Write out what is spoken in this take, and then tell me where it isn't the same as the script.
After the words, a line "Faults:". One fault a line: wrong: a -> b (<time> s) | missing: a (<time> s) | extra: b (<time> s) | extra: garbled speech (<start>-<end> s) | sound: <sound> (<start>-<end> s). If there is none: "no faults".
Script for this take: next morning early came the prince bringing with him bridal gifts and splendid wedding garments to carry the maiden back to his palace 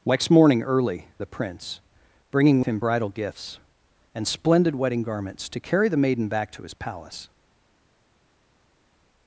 next morning early the prince bringing him bridal gifts and splendid wedding garments to carry the maiden back to his palace
Faults:
missing: came (1.1 s)
missing: with (2.6 s)